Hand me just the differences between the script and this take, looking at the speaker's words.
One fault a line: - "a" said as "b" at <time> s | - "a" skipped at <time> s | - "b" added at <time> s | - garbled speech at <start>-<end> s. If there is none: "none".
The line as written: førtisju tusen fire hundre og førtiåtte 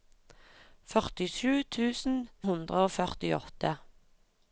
- "fire" skipped at 2.2 s